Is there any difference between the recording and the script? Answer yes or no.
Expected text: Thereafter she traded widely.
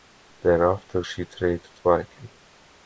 no